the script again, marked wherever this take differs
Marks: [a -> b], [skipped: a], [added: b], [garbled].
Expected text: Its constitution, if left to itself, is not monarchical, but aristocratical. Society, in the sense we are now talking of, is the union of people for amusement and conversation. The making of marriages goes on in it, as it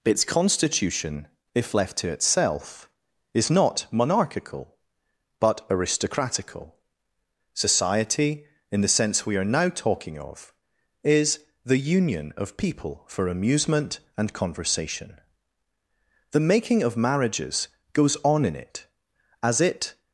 Its constitution, if left to itself, is not monarchical, but aristocratical. Society, in the sense we are now talking of, is the union of people for amusement and conversation. The making of marriages goes on in it, as it